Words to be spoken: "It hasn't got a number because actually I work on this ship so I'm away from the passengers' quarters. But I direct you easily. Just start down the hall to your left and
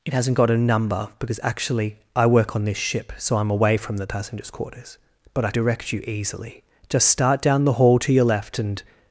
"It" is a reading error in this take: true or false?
false